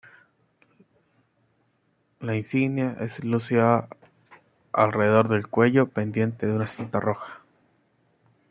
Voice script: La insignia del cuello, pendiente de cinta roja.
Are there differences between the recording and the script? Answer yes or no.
yes